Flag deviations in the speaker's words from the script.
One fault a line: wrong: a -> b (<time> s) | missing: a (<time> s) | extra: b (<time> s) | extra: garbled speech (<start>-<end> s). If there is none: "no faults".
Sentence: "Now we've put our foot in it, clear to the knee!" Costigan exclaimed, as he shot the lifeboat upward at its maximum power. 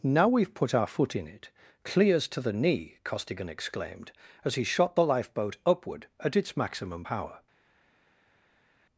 wrong: clear -> clears (1.8 s)